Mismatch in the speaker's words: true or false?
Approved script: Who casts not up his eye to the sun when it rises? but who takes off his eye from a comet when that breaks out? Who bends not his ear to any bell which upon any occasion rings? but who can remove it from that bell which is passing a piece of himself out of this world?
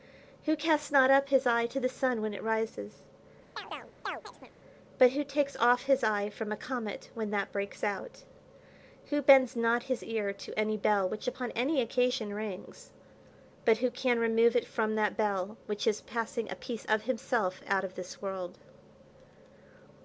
false